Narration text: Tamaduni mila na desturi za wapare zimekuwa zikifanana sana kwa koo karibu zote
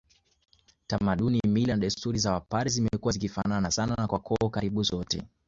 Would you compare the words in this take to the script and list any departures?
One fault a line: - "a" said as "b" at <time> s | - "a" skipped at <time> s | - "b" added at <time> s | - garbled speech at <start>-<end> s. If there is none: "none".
none